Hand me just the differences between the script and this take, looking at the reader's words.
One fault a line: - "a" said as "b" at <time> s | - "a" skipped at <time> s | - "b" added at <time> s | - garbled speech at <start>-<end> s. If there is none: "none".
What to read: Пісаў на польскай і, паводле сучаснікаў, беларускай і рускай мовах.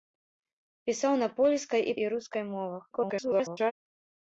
- "паводле сучаснікаў беларускай" skipped at 1.9 s
- garbled speech at 2.9-3.7 s